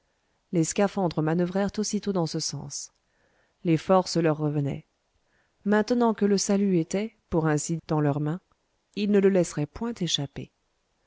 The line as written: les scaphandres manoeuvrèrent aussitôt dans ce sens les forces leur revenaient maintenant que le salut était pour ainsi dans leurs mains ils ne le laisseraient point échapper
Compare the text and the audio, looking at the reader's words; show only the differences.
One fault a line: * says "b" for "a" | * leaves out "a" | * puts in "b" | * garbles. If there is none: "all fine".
all fine